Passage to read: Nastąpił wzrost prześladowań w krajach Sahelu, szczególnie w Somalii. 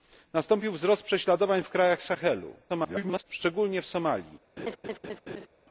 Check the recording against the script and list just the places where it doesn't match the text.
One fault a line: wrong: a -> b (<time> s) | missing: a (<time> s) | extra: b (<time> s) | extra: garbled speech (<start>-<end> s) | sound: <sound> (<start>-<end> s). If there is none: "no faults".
extra: garbled speech (2.7-3.2 s)
sound: laugh (4.6-5.5 s)